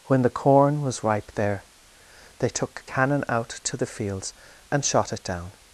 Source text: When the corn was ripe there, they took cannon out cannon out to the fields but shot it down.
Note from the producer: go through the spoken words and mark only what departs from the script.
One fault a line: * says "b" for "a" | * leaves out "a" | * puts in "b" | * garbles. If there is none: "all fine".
* leaves out "cannon out"
* says "and" for "but"